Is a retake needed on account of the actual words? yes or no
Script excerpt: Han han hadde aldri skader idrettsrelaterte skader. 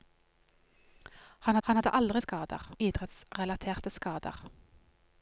no